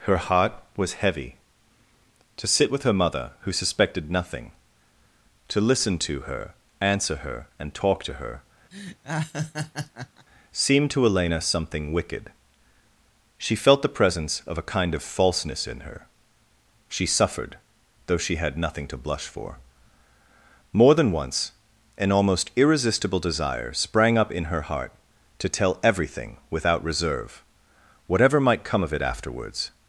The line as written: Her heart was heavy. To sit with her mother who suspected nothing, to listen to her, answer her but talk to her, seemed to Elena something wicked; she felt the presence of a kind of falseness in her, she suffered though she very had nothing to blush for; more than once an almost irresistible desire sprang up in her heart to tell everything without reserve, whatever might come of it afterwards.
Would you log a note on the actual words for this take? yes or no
yes